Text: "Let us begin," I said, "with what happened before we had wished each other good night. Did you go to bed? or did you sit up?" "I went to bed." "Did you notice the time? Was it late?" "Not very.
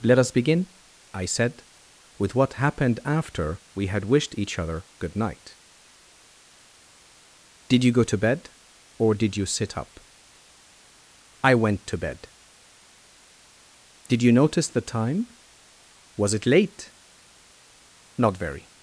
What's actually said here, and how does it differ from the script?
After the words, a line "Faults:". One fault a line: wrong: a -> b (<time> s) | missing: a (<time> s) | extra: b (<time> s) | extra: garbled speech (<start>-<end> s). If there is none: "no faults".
"Let us begin," I said, "with what happened after we had wished each other good night. Did you go to bed? or did you sit up?" "I went to bed." "Did you notice the time? Was it late?" "Not very.
Faults:
wrong: before -> after (3.0 s)